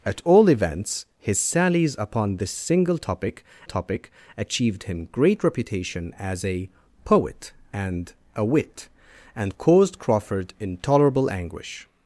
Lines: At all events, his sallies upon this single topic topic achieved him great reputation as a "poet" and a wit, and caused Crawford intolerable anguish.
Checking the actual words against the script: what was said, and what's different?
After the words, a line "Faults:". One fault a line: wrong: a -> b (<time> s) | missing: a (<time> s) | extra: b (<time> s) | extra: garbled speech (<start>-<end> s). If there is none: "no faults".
At all events, his sallies upon this single topic topic achieved him great reputation as a "poet" and a wit, and caused Crawford intolerable anguish.
Faults:
no faults